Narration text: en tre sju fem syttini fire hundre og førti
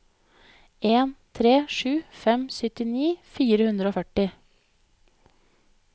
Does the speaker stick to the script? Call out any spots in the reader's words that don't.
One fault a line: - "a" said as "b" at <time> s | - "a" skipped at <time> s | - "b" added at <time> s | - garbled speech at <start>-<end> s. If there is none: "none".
none